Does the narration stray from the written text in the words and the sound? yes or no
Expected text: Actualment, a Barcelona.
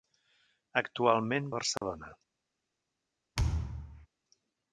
yes